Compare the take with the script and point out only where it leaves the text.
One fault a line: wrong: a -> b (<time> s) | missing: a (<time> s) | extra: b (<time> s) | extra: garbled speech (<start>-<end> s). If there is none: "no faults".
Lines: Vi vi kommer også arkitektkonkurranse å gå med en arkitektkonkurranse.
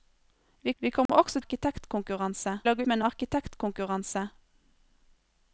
no faults